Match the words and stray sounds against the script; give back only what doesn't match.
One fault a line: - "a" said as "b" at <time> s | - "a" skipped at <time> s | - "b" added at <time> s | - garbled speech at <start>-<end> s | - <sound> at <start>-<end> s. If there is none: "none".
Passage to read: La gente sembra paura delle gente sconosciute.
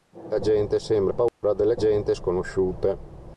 - dropout at 1.3-1.4 s